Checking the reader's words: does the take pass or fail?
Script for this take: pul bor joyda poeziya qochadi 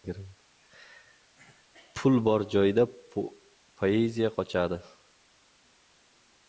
pass